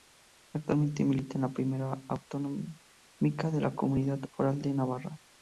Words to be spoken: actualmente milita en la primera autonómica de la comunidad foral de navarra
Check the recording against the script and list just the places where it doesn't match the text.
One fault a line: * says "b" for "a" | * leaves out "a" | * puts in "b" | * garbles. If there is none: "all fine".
all fine